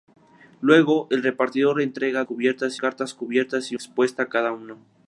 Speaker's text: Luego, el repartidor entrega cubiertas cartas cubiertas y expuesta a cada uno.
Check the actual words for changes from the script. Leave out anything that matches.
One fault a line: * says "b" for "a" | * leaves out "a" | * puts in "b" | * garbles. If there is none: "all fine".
all fine